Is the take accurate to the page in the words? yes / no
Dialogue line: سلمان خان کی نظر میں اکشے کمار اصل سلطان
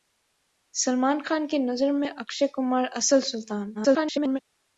no